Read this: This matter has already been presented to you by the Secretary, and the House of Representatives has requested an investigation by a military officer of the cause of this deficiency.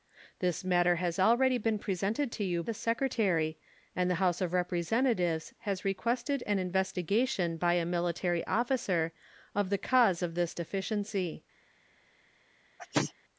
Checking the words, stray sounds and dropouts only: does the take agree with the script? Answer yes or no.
no